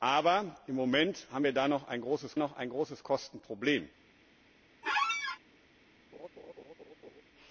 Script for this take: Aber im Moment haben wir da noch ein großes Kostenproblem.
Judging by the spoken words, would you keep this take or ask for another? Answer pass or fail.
fail